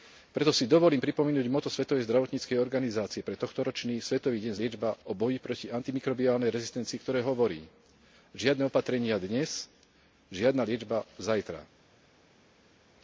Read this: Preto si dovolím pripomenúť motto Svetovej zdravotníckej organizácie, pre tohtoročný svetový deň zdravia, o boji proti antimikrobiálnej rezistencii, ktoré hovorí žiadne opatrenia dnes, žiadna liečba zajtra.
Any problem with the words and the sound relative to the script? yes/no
yes